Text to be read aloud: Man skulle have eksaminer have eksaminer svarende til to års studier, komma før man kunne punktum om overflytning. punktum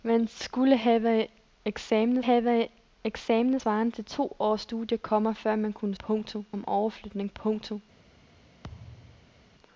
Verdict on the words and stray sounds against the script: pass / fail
fail